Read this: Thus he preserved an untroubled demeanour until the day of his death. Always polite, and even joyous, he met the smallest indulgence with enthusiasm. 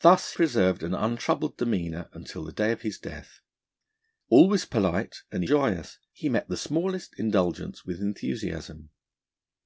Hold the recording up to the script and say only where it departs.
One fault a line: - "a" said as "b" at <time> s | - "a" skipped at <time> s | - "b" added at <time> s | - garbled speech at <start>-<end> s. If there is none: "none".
- "he" skipped at 0.3 s
- "even" skipped at 5.4 s